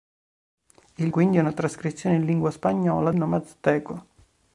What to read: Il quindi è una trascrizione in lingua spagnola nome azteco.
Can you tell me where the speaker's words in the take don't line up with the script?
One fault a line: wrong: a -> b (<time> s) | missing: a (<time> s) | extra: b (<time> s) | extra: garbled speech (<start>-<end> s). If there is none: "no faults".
no faults